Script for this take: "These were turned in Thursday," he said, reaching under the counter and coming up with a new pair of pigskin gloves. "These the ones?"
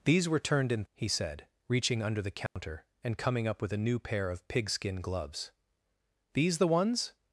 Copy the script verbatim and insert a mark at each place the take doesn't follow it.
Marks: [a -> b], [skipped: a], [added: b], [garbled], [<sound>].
"These were turned in [skipped: Thursday,"] he said, reaching under the counter [dropout] and coming up with a new pair of pigskin gloves. "These the ones?"